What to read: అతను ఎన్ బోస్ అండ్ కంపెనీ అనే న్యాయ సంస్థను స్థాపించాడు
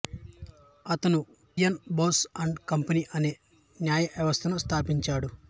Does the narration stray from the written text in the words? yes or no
no